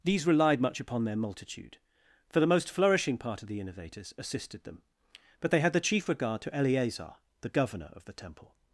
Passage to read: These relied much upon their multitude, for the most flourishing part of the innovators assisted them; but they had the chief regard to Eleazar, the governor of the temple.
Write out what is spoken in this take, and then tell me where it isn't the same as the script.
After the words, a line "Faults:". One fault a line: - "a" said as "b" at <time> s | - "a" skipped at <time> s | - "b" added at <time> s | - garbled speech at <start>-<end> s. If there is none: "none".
These relied much upon their multitude, for the most flourishing part of the innovators assisted them; but they had the chief regard to Eleazar, the governor of the temple.
Faults:
none